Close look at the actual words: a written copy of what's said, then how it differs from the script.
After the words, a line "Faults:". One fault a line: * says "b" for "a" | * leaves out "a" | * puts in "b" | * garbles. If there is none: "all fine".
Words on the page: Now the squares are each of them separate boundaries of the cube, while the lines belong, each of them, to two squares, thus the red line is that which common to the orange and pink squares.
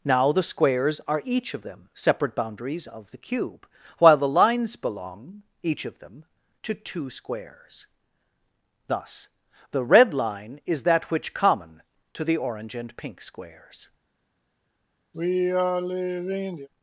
Now the squares are each of them separate boundaries of the cube, while the lines belong, each of them, to two squares, thus the red line is that which common to the orange and pink squares.
Faults:
all fine